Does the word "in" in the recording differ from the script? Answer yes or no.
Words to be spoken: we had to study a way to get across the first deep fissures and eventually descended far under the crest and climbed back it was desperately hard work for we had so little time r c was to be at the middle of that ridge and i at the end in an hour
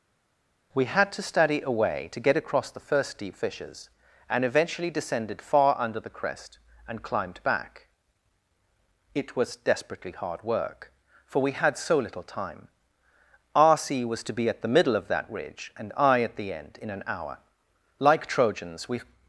no